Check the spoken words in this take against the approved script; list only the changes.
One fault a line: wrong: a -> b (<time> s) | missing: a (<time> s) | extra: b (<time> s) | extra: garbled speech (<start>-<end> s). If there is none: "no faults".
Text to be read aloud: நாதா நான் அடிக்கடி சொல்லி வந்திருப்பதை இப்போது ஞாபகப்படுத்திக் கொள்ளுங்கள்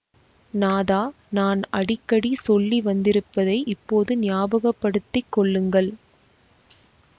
no faults